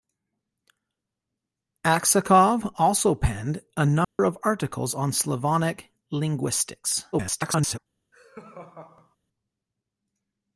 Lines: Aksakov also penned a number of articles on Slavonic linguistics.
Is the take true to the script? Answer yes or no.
no